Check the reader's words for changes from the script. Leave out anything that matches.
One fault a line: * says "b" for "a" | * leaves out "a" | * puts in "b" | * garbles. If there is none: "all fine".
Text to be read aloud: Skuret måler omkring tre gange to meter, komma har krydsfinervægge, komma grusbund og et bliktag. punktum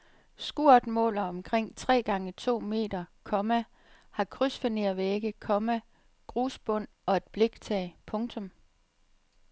all fine